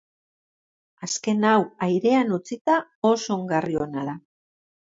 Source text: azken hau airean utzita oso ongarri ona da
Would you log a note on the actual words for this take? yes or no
no